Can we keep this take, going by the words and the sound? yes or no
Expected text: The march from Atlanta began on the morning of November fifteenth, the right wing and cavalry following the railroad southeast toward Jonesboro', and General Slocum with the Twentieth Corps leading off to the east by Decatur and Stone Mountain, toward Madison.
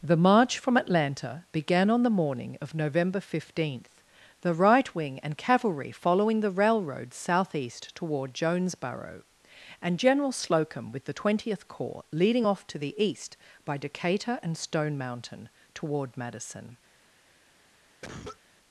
no